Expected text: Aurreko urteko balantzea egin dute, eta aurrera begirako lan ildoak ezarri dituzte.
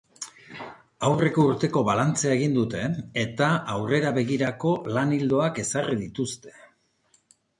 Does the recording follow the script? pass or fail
pass